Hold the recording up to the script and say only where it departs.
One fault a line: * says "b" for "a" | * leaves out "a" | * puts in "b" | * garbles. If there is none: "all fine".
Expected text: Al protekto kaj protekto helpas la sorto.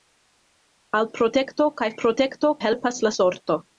all fine